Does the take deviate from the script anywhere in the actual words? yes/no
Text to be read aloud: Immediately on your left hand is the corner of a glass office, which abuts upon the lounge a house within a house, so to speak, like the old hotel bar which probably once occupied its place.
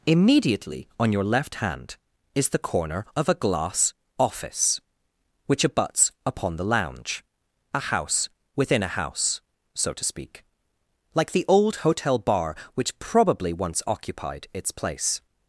no